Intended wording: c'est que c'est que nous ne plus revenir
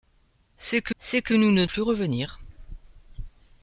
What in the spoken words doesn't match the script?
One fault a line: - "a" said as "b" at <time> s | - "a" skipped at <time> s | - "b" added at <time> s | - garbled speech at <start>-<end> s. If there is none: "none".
none